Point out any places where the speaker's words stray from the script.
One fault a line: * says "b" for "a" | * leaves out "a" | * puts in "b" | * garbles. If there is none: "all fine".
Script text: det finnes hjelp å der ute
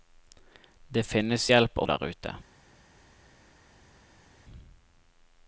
all fine